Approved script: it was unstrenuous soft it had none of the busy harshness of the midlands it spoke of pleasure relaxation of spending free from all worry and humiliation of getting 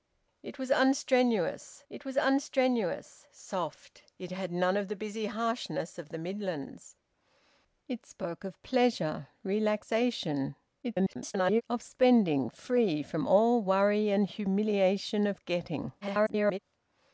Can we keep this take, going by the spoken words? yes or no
no